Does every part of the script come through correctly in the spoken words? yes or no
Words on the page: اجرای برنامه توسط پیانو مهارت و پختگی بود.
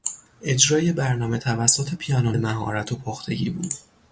yes